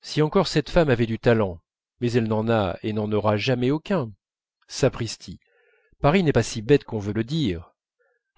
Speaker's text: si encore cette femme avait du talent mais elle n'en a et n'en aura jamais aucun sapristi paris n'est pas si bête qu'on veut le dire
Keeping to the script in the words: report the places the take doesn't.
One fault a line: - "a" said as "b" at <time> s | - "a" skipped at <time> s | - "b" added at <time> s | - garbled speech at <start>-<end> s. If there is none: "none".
none